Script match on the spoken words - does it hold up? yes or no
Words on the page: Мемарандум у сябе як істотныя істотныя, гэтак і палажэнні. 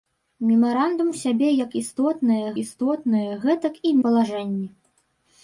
yes